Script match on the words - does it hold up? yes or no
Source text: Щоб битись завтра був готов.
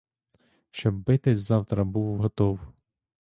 yes